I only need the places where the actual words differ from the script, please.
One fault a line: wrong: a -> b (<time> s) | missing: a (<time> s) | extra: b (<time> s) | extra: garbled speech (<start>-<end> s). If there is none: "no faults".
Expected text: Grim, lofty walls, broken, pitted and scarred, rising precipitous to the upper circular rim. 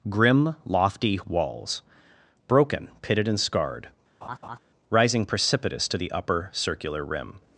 no faults